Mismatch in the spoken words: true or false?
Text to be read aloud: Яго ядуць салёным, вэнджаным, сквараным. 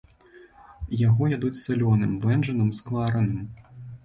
false